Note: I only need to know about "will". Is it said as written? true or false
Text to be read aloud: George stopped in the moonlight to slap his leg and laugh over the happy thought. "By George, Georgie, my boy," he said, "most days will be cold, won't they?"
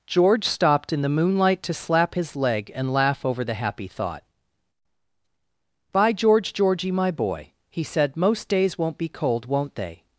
false